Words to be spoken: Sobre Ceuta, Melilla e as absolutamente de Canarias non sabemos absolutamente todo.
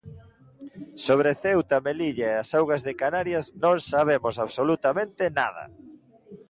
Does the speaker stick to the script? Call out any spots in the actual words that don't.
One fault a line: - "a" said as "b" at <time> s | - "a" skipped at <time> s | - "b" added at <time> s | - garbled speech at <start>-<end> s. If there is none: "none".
- "absolutamente" said as "augas" at 2.6 s
- "todo" said as "nada" at 5.4 s